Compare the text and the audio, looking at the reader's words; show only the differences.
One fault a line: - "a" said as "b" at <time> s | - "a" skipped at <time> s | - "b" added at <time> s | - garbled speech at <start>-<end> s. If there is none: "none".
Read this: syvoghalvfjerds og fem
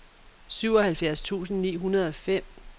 - "tusind ni hundrede" added at 1.2 s